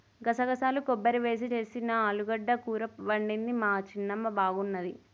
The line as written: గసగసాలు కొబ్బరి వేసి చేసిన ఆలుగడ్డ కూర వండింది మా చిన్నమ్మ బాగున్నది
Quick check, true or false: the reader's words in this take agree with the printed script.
true